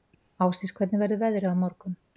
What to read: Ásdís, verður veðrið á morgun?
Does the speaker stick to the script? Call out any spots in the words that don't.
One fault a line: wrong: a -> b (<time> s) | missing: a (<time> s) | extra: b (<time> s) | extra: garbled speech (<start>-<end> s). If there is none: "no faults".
extra: hvernig (0.8 s)